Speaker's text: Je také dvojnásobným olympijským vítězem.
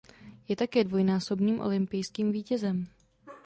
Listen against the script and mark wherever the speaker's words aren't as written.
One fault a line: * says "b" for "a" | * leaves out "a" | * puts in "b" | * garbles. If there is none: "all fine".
all fine